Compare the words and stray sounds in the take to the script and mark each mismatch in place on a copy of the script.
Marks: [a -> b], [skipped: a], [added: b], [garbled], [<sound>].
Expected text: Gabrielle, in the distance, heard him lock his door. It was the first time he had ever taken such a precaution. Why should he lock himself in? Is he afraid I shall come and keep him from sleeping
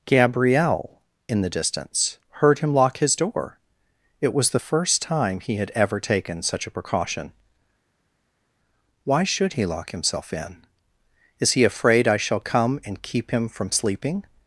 Gabrielle, in the distance, heard him lock his door. It was the first time he had ever taken such a precaution. Why should he lock himself in? Is he afraid I shall come and keep him from sleeping